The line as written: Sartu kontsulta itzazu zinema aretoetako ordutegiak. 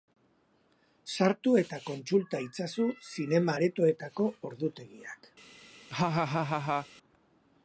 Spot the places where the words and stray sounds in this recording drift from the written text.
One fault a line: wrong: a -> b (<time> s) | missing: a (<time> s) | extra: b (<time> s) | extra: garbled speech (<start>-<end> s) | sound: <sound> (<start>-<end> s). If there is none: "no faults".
extra: eta (1.6 s)
sound: laugh (5.9-6.9 s)